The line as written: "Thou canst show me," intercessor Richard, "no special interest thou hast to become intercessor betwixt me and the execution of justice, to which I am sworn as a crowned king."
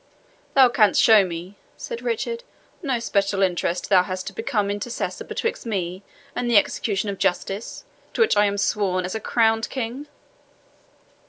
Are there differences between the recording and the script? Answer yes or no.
yes